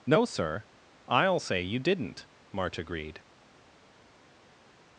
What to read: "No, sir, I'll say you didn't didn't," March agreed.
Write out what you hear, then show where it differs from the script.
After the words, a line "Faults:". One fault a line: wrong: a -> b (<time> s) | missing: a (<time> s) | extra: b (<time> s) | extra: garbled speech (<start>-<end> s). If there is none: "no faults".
"No, sir, I'll say you didn't," March agreed.
Faults:
missing: didn't (2.3 s)